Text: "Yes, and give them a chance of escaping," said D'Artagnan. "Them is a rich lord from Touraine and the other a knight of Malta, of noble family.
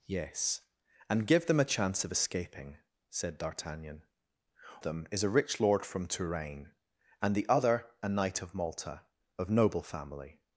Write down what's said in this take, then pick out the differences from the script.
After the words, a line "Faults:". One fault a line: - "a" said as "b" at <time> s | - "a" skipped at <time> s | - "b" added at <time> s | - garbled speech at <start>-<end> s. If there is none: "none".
"Yes, and give them a chance of escaping," said D'Artagnan. "Them is a rich lord from Touraine and the other a knight of Malta, of noble family.
Faults:
none